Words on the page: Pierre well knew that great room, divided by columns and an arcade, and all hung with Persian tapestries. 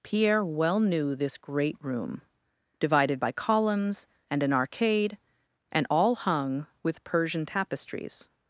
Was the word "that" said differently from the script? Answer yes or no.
yes